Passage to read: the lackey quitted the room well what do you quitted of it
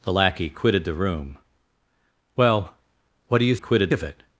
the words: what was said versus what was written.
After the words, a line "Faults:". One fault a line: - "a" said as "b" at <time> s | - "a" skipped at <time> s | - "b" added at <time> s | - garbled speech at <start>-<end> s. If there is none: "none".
the lackey quitted the room well what do you quitted of it
Faults:
none